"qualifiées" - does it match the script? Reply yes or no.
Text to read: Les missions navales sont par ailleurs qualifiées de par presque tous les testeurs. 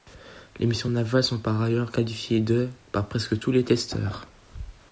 yes